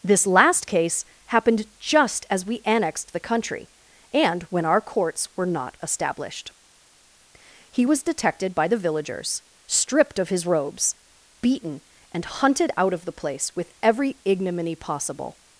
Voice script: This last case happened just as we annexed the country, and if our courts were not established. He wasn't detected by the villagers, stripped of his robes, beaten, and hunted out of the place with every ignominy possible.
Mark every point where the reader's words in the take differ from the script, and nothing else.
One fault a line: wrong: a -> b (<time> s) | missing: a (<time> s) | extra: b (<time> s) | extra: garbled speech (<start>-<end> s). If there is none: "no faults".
wrong: if -> when (4.5 s)
wrong: wasn't -> was (7.8 s)